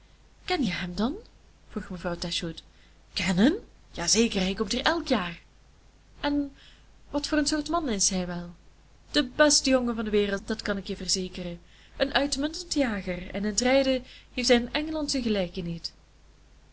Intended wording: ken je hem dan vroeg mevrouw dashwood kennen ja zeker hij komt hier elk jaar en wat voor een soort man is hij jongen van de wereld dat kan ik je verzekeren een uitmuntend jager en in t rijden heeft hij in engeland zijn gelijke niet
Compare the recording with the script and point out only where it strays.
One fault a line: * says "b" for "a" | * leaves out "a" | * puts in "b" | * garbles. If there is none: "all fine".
* puts in "wel de beste"